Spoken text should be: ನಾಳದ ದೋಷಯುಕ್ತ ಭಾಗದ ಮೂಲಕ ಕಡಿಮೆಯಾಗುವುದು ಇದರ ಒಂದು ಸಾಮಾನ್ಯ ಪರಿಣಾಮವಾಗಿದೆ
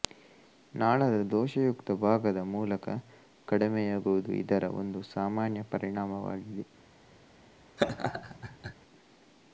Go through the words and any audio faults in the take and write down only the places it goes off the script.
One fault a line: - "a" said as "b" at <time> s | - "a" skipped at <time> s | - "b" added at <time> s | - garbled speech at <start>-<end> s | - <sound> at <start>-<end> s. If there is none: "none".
- laugh at 7.8-8.7 s